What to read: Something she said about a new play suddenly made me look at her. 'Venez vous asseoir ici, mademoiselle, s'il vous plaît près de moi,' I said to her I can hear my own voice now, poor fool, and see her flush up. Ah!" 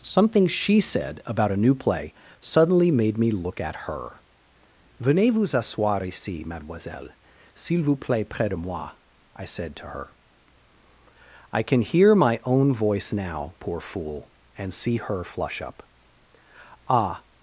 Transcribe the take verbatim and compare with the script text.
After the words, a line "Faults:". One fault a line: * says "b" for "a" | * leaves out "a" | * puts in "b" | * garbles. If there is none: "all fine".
Something she said about a new play suddenly made me look at her. 'Venez vous asseoir ici, mademoiselle, s'il vous plaît près de moi,' I said to her I can hear my own voice now, poor fool, and see her flush up. Ah!"
Faults:
all fine